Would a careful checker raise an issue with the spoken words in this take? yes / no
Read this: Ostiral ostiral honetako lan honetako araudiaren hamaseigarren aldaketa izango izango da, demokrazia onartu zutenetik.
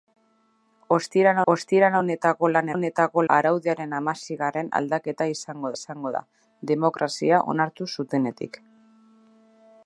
no